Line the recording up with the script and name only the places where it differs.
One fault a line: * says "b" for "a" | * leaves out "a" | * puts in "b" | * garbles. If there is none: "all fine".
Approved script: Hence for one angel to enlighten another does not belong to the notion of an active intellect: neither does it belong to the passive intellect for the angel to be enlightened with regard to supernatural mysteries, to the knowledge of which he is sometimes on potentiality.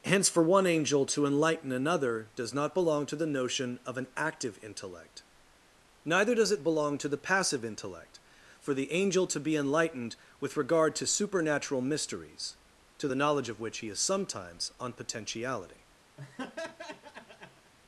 all fine